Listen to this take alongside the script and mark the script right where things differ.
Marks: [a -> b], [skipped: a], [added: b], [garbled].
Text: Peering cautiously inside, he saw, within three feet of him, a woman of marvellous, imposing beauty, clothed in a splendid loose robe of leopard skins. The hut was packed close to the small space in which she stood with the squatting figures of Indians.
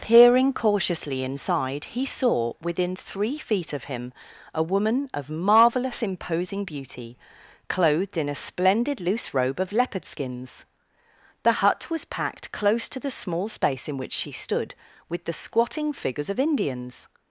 Peering cautiously inside, he saw, within three feet of him, a woman of marvellous, imposing beauty, clothed in a splendid loose robe of leopard skins. The hut was packed close to the small space in which she stood with the squatting figures of Indians.